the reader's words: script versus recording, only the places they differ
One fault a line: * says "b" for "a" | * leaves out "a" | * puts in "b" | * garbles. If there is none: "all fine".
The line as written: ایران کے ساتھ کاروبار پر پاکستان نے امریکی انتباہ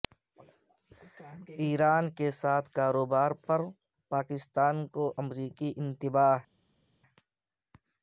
* says "کو" for "نے"